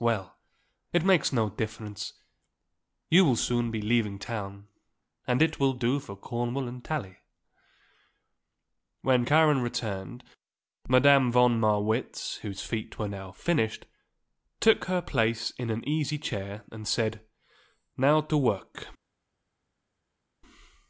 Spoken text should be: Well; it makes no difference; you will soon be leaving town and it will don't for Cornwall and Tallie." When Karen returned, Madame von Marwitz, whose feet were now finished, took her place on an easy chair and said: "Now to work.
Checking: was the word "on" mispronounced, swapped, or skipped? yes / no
yes